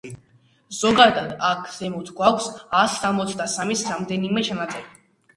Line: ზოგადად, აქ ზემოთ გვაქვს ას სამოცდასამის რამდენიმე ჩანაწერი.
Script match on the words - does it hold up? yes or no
yes